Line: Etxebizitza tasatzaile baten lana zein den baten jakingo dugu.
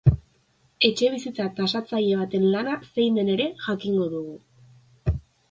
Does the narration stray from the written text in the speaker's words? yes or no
yes